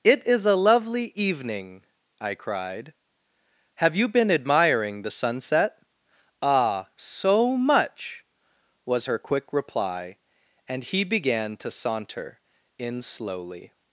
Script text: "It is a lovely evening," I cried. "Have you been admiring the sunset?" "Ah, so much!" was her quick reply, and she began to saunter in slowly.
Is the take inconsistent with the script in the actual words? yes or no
yes